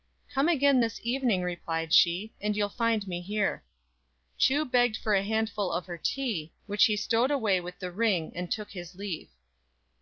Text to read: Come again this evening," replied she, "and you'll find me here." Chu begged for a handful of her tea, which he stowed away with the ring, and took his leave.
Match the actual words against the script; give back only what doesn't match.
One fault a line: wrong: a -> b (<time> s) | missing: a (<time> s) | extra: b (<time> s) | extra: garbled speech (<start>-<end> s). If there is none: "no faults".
no faults